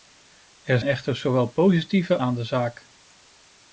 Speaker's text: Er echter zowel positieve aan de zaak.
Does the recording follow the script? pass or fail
pass